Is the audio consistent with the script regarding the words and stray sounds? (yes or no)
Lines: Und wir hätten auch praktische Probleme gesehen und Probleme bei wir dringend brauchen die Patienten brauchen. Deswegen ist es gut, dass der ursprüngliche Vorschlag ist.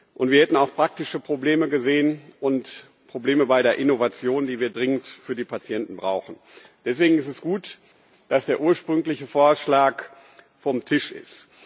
no